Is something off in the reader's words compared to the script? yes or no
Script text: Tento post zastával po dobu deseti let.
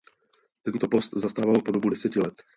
no